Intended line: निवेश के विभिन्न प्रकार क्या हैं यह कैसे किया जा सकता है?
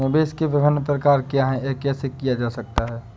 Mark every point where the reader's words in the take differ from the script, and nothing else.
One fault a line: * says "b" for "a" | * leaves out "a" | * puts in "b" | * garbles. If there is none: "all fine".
all fine